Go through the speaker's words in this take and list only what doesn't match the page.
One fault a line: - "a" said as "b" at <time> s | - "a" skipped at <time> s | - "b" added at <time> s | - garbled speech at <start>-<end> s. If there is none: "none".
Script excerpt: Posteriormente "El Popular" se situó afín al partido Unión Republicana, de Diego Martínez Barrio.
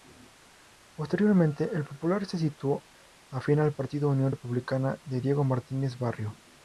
none